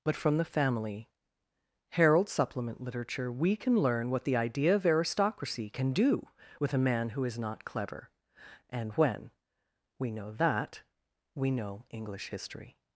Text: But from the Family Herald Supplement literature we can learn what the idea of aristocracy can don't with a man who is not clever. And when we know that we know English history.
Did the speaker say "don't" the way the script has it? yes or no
no